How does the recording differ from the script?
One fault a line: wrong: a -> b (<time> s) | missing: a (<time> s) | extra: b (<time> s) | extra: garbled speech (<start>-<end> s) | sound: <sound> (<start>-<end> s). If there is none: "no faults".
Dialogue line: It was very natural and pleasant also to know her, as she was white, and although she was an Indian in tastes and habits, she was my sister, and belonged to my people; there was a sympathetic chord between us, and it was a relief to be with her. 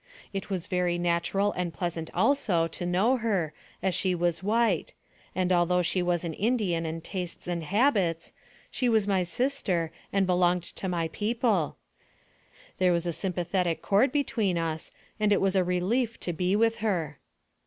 no faults